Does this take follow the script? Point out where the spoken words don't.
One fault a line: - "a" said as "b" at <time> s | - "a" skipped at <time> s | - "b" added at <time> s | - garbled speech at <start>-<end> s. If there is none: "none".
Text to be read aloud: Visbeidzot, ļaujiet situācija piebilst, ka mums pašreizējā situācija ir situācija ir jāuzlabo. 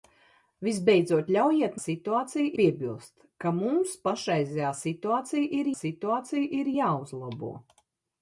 none